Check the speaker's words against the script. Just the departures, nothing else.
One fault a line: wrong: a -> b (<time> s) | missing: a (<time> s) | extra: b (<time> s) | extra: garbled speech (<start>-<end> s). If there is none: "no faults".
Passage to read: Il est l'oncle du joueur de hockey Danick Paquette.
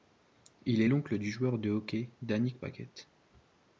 no faults